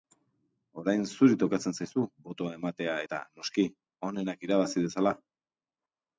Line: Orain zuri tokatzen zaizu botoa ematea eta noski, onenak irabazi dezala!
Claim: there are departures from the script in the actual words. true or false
false